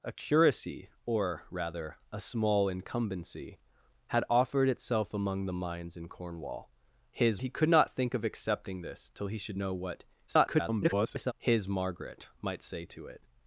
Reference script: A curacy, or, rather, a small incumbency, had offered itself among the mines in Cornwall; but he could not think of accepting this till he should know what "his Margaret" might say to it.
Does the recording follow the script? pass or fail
fail